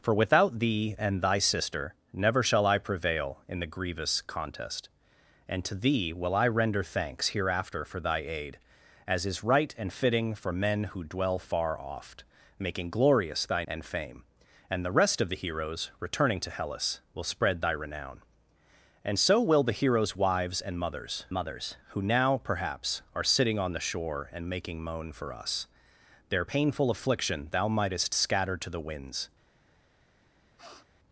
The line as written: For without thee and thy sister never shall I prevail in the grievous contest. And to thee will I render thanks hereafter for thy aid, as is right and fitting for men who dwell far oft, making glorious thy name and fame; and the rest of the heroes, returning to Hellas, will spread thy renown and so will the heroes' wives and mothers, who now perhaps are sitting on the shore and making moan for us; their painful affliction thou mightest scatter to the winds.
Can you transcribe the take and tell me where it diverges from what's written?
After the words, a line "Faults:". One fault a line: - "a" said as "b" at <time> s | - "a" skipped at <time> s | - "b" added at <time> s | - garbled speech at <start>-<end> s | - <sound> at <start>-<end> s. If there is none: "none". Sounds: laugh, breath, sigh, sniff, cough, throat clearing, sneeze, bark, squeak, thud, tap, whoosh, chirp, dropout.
For without thee and thy sister never shall I prevail in the grievous contest. And to thee will I render thanks hereafter for thy aid, as is right and fitting for men who dwell far oft, making glorious thy and fame; and the rest of the heroes, returning to Hellas, will spread thy renown and so will the heroes' wives and mothers mothers, who now perhaps are sitting on the shore and making moan for us; their painful affliction thou mightest scatter to the winds.
Faults:
- "name" skipped at 13.6 s
- "mothers" added at 21.3 s
- sniff at 30.6-30.9 s